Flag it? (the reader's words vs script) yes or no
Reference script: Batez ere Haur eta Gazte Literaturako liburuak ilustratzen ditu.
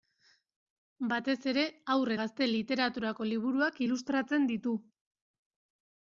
yes